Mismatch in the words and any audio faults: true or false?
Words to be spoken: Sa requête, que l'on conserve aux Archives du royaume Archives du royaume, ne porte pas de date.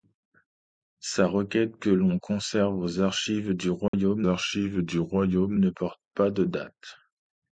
true